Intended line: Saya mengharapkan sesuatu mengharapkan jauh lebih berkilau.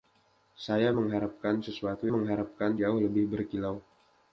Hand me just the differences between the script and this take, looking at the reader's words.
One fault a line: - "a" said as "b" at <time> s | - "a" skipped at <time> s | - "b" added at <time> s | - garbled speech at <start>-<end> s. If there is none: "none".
none